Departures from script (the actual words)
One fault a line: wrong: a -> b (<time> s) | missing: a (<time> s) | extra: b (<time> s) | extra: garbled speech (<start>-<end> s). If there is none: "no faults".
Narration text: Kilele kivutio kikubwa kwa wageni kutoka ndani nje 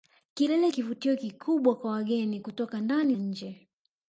no faults